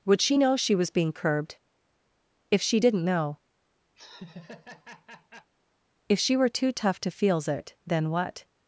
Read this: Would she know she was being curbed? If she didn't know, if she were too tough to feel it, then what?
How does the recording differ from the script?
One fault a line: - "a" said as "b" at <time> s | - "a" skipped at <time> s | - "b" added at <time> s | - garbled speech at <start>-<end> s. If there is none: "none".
- "feel" said as "feels" at 7.1 s